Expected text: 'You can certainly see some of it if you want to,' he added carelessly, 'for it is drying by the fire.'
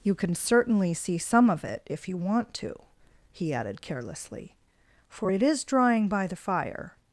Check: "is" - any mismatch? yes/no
no